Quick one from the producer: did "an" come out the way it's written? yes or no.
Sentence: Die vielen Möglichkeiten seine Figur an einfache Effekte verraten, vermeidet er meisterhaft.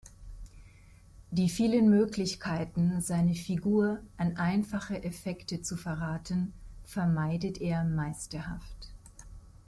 yes